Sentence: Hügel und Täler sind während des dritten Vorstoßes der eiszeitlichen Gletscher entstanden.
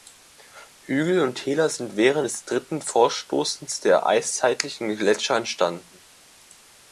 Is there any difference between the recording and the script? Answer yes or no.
no